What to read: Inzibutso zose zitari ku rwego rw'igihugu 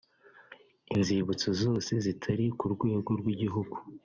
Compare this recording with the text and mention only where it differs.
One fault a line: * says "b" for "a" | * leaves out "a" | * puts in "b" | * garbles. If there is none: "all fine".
all fine